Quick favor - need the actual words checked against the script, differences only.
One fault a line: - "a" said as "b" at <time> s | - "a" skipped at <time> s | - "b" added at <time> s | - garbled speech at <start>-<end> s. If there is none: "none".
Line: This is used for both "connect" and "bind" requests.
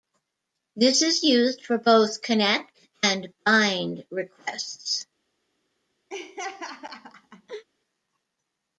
none